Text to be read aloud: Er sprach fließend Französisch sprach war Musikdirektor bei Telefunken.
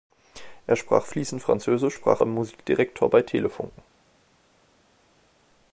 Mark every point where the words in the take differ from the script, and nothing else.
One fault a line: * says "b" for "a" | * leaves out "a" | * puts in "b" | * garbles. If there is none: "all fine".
all fine